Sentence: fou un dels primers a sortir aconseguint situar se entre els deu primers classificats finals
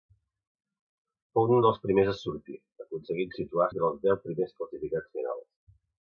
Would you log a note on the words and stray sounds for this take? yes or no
yes